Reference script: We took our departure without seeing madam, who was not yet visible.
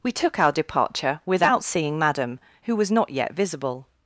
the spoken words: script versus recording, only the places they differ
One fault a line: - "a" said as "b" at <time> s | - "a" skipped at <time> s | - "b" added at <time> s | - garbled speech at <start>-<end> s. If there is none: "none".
none